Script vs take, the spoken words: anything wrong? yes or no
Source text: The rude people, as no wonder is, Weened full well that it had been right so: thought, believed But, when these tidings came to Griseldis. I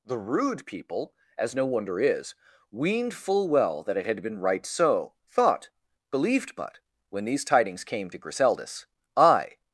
no